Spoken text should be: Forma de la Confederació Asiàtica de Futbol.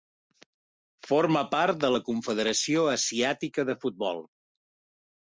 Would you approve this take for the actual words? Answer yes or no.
no